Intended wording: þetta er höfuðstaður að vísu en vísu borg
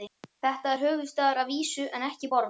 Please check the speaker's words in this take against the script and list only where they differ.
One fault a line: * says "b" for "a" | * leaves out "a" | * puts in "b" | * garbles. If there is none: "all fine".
* says "ekki" for "vísu"